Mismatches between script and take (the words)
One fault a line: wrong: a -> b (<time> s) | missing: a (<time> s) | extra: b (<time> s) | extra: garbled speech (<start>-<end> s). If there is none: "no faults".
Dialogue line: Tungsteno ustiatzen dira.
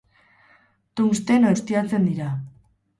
no faults